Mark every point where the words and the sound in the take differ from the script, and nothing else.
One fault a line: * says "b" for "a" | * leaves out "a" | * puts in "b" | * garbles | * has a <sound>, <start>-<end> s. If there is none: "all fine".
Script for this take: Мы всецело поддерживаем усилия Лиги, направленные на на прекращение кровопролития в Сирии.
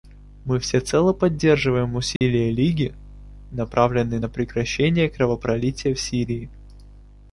* has a dropout, 2.2-2.2 s
* leaves out "на"